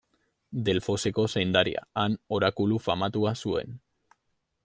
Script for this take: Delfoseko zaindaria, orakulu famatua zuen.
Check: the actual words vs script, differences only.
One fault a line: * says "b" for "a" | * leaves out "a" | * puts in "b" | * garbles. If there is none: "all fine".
* puts in "han"